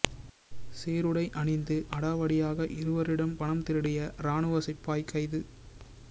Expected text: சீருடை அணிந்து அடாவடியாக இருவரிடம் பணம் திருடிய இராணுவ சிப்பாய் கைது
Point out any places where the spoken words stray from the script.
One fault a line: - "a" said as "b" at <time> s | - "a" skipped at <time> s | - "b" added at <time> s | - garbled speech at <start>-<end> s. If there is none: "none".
none